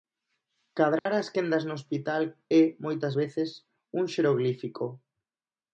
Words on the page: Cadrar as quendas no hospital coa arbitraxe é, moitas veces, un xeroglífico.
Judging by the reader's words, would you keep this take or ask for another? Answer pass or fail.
fail